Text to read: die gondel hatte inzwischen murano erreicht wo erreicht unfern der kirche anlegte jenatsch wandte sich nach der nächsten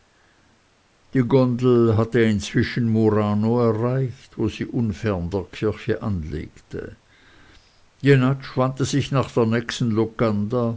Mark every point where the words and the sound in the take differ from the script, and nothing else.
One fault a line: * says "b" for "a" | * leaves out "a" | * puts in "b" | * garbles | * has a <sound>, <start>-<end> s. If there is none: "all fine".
* says "sie" for "erreicht"